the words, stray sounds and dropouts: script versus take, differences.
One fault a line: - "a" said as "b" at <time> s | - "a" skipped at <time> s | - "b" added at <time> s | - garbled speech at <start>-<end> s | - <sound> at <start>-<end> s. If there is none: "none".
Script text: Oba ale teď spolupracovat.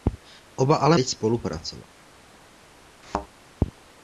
- thud at 3.0-3.3 s